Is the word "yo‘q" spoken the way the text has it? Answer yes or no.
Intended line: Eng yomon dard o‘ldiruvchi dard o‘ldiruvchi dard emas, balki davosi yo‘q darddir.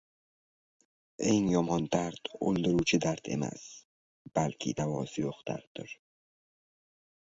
yes